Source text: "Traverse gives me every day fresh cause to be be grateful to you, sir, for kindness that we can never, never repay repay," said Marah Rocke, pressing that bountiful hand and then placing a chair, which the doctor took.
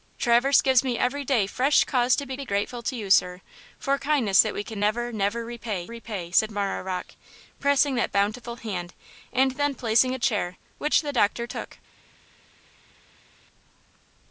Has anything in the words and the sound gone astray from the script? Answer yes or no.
no